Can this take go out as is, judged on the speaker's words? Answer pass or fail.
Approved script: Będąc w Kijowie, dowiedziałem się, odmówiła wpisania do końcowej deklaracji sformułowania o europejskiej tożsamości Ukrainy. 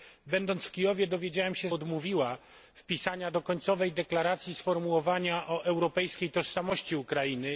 pass